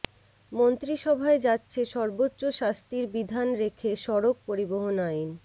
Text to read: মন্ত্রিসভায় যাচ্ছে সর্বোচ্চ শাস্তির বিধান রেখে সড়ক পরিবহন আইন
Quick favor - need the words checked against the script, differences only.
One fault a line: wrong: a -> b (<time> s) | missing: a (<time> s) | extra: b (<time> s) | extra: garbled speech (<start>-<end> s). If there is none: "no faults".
no faults